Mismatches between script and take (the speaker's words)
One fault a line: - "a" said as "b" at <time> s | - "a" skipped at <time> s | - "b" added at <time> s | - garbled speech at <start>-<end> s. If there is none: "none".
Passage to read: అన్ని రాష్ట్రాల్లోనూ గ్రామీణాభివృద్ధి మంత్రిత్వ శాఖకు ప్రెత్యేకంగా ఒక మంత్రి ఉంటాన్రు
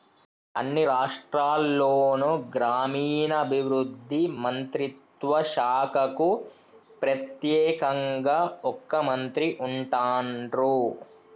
none